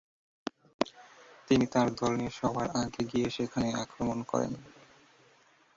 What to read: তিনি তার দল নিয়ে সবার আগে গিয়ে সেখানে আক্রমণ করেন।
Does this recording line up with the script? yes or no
yes